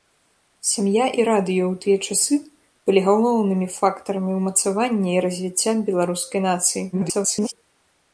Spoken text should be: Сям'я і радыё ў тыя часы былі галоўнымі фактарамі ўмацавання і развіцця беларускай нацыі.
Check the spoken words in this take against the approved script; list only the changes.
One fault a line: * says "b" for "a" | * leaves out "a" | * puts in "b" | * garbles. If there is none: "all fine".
* garbles